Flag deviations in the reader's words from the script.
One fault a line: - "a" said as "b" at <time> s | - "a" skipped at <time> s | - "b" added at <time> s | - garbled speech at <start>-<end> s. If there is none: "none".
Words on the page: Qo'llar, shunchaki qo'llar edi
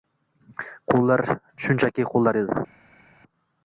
none